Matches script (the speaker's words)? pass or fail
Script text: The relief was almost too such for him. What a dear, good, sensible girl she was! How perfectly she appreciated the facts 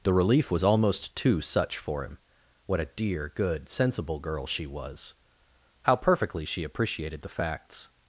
pass